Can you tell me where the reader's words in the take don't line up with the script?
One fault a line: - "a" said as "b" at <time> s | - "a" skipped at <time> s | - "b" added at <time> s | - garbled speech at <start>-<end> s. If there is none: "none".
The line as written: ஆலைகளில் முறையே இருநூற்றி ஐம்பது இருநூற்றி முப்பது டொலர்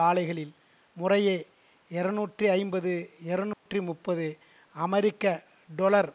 - "அமெரிக்க" added at 4.8 s